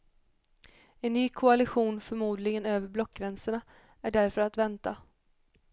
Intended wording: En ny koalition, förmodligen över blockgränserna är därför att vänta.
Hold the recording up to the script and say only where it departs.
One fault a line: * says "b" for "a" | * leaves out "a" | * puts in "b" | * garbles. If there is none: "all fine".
all fine